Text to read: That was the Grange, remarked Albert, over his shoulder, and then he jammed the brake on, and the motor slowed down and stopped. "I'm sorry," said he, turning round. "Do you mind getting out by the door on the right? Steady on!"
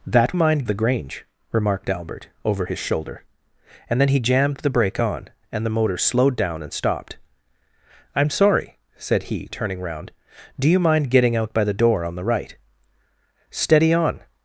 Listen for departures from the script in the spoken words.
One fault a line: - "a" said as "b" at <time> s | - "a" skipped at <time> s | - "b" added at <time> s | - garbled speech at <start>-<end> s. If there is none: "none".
- "was" said as "mind" at 0.4 s